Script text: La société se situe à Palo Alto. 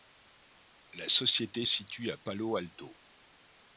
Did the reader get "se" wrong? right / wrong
wrong